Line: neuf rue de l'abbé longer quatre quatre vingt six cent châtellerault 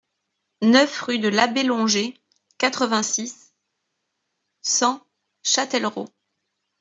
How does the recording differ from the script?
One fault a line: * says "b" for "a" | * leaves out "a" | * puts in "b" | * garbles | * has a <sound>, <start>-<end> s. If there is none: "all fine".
* leaves out "quatre"